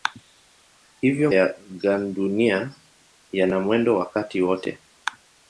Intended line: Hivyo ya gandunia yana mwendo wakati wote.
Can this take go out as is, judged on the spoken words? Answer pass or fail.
pass